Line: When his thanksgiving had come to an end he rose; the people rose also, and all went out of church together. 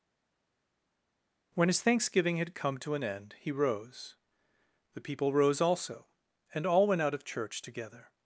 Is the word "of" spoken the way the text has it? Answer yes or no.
yes